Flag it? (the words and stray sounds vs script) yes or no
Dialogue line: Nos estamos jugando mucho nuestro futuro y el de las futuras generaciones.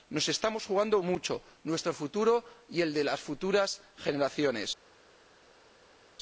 no